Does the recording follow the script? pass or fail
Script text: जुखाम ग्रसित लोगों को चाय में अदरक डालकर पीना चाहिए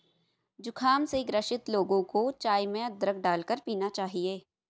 fail